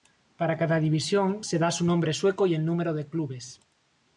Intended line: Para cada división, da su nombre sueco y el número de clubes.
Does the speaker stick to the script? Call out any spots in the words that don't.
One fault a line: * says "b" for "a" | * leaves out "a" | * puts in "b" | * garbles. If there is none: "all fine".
* puts in "se"